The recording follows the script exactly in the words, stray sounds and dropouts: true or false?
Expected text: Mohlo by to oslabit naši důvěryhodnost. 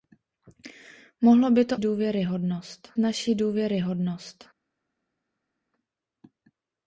false